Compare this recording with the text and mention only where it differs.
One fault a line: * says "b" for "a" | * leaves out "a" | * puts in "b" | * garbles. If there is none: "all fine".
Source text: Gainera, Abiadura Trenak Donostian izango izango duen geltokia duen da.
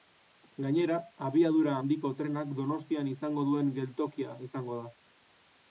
* puts in "Handiko"
* leaves out "izango"
* says "izango" for "duen"